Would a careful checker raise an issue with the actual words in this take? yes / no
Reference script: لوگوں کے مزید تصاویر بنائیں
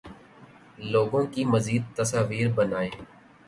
yes